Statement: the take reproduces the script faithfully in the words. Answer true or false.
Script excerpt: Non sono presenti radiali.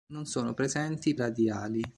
true